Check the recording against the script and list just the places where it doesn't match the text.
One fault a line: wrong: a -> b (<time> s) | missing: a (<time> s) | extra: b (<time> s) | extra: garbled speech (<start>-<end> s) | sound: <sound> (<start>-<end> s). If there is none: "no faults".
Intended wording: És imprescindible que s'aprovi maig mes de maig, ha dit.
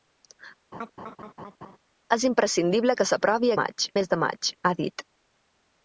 sound: laugh (0.7-1.8 s)